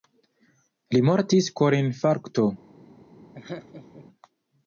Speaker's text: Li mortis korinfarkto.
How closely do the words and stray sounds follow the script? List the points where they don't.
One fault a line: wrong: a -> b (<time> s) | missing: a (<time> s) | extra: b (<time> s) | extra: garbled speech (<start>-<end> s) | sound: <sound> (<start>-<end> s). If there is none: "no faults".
sound: laugh (3.3-4.1 s)